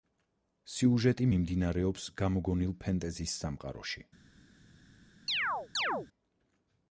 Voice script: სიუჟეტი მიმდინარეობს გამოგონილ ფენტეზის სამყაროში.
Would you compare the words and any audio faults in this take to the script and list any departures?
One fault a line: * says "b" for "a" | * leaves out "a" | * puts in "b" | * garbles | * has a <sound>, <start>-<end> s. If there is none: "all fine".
* has a chirp, 5.3-6.1 s